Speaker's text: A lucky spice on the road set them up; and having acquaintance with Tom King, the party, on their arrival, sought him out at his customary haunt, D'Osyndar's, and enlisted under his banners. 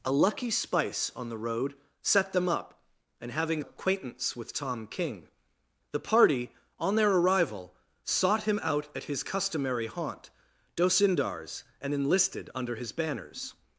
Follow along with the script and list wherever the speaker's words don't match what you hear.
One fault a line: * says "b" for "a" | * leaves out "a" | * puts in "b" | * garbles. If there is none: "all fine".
all fine